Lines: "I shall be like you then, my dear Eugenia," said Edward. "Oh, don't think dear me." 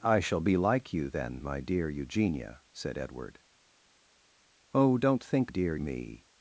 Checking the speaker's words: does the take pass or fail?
pass